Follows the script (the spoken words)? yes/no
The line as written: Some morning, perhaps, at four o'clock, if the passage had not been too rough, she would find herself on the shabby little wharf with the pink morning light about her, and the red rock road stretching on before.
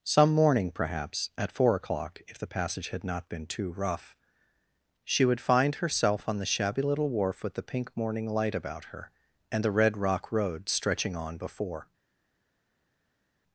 yes